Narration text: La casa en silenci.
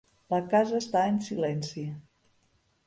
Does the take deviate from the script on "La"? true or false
false